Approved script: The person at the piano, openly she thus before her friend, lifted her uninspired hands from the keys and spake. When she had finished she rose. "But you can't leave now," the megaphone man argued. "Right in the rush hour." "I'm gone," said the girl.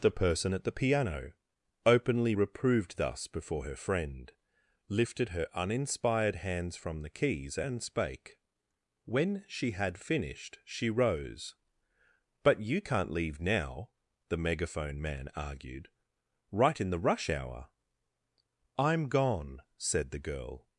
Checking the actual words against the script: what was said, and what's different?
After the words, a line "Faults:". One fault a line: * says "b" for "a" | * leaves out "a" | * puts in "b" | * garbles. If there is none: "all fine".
The person at the piano, openly reproved thus before her friend, lifted her uninspired hands from the keys and spake. When she had finished she rose. "But you can't leave now," the megaphone man argued. "Right in the rush hour." "I'm gone," said the girl.
Faults:
* says "reproved" for "she"